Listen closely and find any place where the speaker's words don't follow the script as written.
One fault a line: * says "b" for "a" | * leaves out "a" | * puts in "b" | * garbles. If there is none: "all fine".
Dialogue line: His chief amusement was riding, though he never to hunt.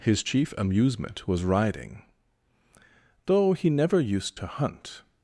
* puts in "used"